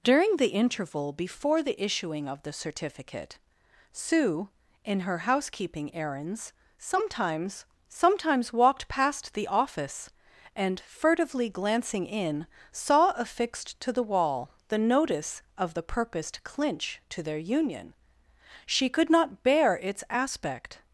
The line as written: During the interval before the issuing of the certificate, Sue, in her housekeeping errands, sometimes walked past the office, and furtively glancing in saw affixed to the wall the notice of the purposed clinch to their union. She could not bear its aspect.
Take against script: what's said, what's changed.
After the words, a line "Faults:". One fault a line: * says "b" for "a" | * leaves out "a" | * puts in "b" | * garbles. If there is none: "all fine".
During the interval before the issuing of the certificate, Sue, in her housekeeping errands, sometimes sometimes walked past the office, and furtively glancing in saw affixed to the wall the notice of the purposed clinch to their union. She could not bear its aspect.
Faults:
* puts in "sometimes"